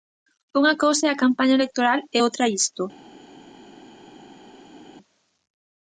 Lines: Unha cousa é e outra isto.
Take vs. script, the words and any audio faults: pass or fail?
fail